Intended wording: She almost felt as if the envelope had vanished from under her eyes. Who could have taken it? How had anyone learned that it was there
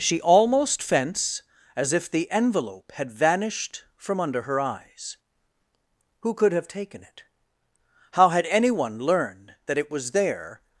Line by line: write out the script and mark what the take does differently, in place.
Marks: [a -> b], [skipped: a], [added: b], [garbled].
She almost [felt -> fence] as if the envelope had vanished from under her eyes. Who could have taken it? How had anyone learned that it was there